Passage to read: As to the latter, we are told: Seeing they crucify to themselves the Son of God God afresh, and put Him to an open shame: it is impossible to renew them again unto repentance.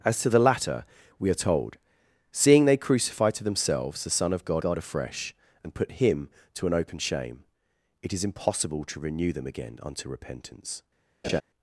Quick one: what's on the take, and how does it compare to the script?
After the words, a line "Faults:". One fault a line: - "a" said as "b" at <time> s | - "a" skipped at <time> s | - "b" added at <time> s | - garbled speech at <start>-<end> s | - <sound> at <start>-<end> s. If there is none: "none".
As to the latter, we are told: Seeing they crucify to themselves the Son of God God afresh, and put Him to an open shame: it is impossible to renew them again unto repentance.
Faults:
- laugh at 11.2-11.4 s